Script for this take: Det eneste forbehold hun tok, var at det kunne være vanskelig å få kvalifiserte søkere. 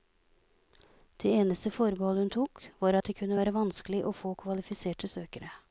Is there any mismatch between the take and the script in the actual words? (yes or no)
no